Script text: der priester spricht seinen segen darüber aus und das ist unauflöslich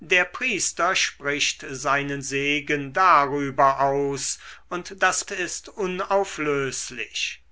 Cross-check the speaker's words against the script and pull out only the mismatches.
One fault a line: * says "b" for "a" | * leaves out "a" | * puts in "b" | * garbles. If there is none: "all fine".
all fine